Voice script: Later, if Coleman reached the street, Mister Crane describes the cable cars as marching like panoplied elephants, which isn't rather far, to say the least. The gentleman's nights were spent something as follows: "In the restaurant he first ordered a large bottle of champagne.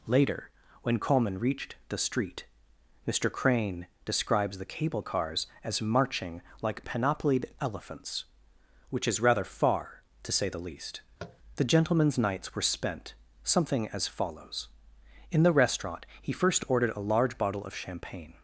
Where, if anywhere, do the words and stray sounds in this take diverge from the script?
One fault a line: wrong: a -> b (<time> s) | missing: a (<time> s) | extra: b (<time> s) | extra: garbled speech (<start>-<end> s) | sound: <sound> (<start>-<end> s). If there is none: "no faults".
wrong: if -> when (0.8 s)
wrong: isn't -> is (9.1 s)
sound: tap (11.2-11.4 s)